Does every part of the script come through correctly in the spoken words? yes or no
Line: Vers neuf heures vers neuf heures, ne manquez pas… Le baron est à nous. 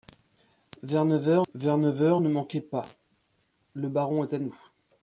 yes